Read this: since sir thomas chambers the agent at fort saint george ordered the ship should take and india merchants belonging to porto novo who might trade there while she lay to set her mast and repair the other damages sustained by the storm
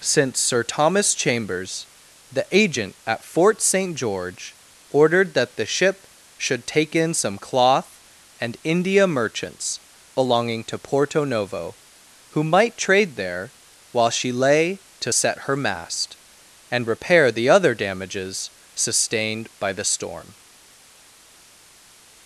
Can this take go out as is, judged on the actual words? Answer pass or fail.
fail